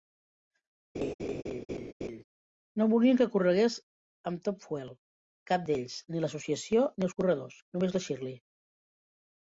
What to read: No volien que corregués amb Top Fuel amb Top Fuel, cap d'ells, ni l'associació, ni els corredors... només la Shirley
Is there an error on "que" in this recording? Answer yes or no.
no